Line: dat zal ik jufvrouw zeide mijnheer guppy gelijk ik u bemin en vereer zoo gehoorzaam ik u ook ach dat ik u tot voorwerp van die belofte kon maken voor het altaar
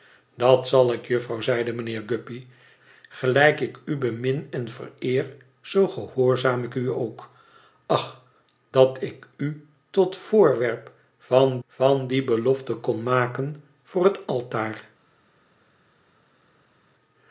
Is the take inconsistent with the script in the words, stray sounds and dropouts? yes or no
yes